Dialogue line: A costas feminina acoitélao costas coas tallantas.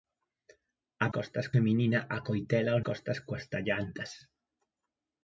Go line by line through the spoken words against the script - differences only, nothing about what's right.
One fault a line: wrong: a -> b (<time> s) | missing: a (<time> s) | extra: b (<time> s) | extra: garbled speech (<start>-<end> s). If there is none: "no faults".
no faults